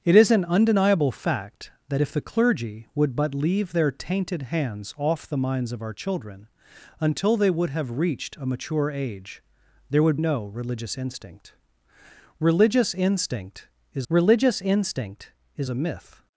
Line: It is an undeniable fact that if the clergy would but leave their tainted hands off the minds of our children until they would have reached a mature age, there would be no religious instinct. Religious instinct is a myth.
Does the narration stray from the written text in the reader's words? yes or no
yes